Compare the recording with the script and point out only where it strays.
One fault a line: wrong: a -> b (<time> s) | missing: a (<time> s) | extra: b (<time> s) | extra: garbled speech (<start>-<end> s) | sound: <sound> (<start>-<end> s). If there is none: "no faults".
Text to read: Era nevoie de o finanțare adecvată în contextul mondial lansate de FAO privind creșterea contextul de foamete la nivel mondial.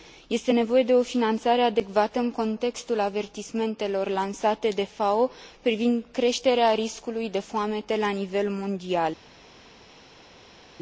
wrong: Era -> Este (0.3 s)
wrong: mondial -> avertismentelor (3.0 s)
wrong: contextul -> riscului (6.7 s)